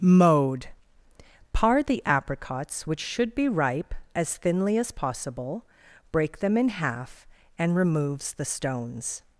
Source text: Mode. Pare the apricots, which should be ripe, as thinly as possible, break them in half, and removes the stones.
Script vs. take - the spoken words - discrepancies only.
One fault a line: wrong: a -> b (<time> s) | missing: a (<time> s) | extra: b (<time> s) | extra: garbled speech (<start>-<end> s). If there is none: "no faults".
no faults